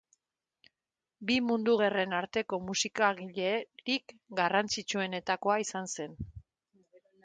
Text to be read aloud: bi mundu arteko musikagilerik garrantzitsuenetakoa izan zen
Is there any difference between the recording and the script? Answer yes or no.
yes